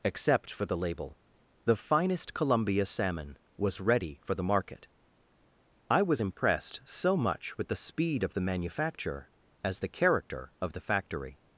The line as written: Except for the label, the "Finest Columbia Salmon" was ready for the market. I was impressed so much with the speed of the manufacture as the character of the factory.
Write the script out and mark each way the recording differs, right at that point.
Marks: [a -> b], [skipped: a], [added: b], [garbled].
Except for the label, the "Finest Columbia Salmon" was ready for the market. I was impressed so much with the speed of the manufacture as the character of the factory.